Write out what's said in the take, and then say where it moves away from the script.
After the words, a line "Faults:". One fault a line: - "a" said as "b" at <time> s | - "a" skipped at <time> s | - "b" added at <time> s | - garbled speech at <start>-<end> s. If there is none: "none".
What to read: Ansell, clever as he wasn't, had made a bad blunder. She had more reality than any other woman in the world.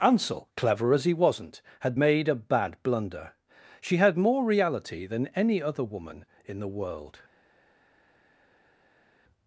Ansell, clever as he wasn't, had made a bad blunder. She had more reality than any other woman in the world.
Faults:
none